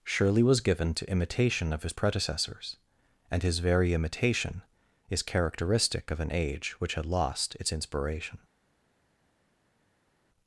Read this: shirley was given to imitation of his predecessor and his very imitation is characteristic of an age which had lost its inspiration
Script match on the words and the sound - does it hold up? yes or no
no